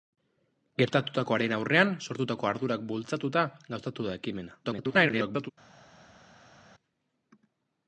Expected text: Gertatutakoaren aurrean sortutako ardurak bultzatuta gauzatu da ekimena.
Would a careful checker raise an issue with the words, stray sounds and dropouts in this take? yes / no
yes